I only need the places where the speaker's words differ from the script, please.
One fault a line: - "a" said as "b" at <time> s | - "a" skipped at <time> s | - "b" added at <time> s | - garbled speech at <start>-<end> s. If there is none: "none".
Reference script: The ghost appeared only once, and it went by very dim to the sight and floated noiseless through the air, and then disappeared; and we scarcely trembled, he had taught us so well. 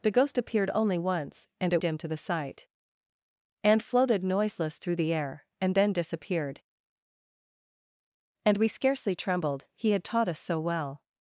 - "went by very" skipped at 1.8 s